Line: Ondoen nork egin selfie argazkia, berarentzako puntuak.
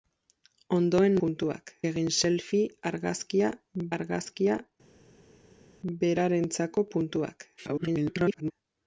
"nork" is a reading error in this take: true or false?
true